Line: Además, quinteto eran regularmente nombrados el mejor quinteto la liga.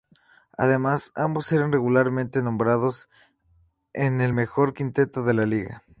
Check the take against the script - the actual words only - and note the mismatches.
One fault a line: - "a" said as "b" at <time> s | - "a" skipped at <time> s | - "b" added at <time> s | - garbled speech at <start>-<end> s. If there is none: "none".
- "quinteto" said as "ambos" at 1.1 s
- "en" added at 3.9 s
- "de" added at 5.2 s